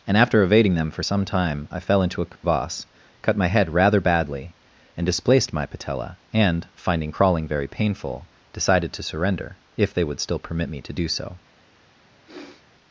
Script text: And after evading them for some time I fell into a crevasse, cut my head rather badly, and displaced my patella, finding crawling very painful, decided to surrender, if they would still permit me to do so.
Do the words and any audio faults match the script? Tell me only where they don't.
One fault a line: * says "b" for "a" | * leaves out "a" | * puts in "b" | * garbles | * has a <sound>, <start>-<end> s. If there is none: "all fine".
* has a dropout, 2.4-2.4 s
* puts in "and"
* has a sniff, 12.2-12.7 s